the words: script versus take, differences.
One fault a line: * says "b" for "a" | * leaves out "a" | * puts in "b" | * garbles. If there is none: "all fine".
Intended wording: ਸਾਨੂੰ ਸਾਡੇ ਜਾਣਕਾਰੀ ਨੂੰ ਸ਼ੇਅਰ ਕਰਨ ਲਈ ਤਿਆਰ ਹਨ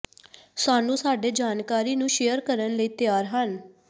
all fine